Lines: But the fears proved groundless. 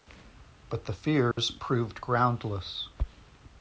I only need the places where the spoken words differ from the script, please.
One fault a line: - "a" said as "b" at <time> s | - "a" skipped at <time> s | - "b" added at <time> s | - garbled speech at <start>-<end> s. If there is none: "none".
none